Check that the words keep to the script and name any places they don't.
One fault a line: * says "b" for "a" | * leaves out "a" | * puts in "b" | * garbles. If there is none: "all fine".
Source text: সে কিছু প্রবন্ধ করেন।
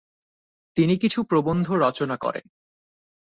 * says "তিনি" for "সে"
* puts in "রচনা"